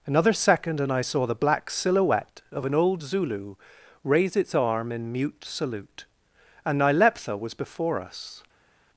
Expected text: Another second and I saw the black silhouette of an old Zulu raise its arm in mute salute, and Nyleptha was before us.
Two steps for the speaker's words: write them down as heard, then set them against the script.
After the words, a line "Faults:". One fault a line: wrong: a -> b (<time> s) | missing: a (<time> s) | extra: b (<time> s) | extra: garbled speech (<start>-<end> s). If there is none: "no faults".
Another second and I saw the black silhouette of an old Zulu raise its arm in mute salute, and Nyleptha was before us.
Faults:
no faults